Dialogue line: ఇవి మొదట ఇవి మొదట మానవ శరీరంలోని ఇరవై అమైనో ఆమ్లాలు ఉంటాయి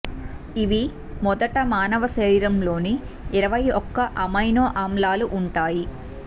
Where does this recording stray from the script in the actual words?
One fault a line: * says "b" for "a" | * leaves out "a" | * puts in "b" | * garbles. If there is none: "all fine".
* leaves out "ఇవి మొదట"
* puts in "ఒక్క"